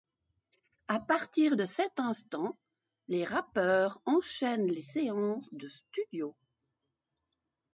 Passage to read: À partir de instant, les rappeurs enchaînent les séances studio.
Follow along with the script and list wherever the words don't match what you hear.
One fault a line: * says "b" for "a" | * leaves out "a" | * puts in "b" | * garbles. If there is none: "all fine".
* puts in "cet"
* puts in "de"